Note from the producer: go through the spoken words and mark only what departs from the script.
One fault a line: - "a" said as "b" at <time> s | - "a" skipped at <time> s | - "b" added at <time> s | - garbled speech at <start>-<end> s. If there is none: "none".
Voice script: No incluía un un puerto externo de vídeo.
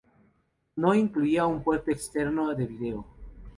- "un" skipped at 1.6 s